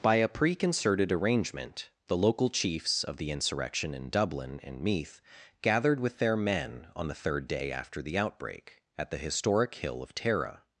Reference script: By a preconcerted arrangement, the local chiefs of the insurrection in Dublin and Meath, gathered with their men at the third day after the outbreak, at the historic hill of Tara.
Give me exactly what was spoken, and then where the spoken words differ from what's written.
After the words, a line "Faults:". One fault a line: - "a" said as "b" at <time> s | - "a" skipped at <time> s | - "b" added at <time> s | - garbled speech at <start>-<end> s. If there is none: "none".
By a preconcerted arrangement, the local chiefs of the insurrection in Dublin and Meath, gathered with their men on the third day after the outbreak, at the historic hill of Tara.
Faults:
- "at" said as "on" at 7.0 s